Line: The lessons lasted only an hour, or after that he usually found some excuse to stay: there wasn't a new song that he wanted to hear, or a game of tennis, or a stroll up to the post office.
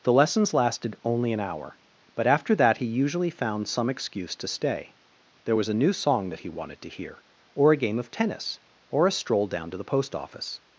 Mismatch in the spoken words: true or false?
true